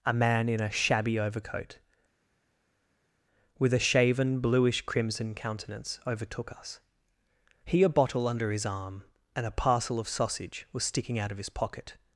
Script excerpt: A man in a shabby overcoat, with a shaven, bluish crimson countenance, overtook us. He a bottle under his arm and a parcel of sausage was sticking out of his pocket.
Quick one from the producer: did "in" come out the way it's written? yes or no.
yes